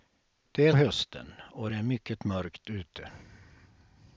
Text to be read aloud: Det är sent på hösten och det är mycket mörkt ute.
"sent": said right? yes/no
no